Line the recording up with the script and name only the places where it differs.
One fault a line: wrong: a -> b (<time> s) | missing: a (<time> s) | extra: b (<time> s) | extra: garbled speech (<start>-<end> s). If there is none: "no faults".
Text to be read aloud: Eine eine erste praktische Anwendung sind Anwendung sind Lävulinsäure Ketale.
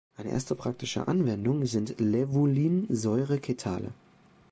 missing: eine (0.3 s)
missing: Anwendung sind (2.0 s)